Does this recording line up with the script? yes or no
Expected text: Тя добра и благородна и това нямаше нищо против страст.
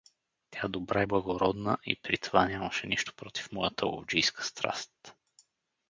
no